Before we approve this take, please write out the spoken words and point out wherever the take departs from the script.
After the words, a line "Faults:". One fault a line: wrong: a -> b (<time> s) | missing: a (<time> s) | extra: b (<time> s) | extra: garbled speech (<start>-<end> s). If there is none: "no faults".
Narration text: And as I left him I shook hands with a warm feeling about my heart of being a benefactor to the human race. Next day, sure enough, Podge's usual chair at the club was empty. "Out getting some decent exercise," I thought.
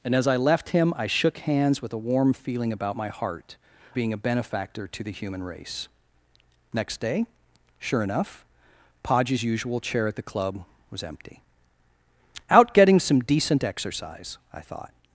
And as I left him I shook hands with a warm feeling about my heart being a benefactor to the human race. Next day, sure enough, Podge's usual chair at the club was empty. "Out getting some decent exercise," I thought.
Faults:
missing: of (3.6 s)